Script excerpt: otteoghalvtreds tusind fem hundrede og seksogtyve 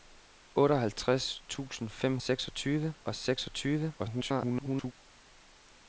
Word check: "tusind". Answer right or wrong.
right